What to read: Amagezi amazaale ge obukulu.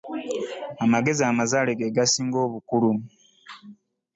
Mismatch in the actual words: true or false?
true